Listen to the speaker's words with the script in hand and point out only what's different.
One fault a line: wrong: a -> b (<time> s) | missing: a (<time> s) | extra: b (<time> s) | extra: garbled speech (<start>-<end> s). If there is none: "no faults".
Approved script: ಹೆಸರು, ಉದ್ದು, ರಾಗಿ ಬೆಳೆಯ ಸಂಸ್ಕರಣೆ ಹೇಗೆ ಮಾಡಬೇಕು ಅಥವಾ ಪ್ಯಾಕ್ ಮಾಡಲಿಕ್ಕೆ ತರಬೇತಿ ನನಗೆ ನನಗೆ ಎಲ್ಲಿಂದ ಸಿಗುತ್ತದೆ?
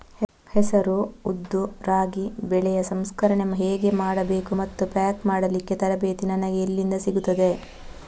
wrong: ಅಥವಾ -> ಮತ್ತು (4.5 s)
missing: ನನಗೆ (6.6 s)